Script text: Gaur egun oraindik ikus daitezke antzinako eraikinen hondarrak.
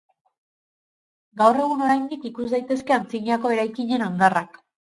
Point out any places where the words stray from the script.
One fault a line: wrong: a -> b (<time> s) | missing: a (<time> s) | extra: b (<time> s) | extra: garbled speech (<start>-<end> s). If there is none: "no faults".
no faults